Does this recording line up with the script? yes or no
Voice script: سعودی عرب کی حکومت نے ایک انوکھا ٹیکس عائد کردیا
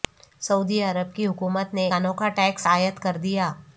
no